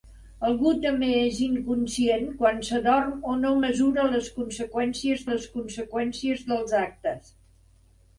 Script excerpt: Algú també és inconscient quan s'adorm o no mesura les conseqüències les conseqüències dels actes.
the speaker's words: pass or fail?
pass